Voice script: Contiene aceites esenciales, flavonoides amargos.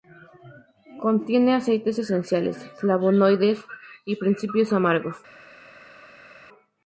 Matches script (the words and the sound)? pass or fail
fail